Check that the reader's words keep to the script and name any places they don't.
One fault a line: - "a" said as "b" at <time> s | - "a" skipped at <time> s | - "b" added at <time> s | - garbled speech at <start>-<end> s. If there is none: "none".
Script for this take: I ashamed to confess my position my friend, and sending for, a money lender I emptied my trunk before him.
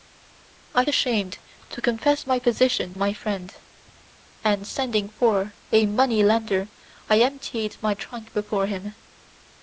none